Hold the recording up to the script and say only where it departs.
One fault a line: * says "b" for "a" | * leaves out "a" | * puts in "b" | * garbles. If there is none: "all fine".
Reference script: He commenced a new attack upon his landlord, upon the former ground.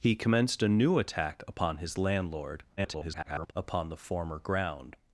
* garbles